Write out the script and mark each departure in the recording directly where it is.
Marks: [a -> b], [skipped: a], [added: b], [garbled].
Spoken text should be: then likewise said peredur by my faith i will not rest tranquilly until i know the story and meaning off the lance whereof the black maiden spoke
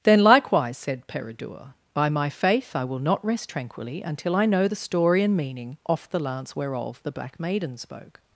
then likewise said peredur by my faith i will not rest tranquilly until i know the story and meaning off the lance whereof the black maiden spoke